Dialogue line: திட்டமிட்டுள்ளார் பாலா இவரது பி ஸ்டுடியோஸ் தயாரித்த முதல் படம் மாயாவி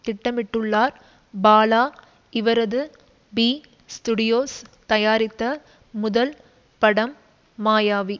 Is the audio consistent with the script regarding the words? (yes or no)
yes